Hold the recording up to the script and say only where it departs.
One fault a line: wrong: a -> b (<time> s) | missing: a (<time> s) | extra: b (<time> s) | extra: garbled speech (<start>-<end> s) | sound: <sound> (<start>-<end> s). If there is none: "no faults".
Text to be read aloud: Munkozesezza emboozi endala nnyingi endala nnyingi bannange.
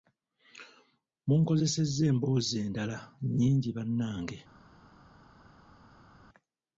missing: endala nnyingi (3.7 s)